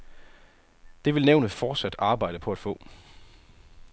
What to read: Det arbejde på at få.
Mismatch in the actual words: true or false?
true